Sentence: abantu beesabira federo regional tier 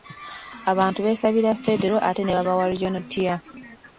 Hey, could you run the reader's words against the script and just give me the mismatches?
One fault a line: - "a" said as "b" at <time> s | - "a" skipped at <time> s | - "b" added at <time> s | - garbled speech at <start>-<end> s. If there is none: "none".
- "ate ne babawa" added at 2.1 s